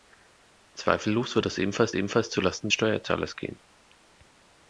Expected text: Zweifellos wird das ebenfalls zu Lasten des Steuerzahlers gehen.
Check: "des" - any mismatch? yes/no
yes